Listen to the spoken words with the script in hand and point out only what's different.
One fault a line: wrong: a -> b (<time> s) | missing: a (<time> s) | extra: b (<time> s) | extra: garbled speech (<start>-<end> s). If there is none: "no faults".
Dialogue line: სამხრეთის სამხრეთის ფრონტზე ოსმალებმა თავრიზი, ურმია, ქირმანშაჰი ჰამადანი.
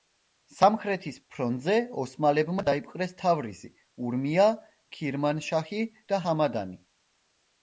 missing: სამხრეთის (1.2 s)
extra: დაიპყრეს (2.7 s)
extra: და (6.1 s)